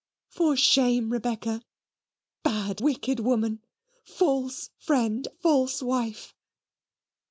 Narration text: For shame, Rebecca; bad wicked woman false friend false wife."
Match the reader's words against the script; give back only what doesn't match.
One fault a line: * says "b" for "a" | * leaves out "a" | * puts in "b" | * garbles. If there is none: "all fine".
all fine